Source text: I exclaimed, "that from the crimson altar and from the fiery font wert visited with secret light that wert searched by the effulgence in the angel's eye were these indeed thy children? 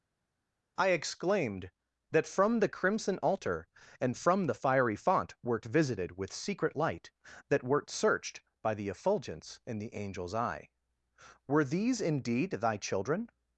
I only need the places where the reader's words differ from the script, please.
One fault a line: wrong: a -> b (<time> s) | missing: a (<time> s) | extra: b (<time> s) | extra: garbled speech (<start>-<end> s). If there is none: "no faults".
no faults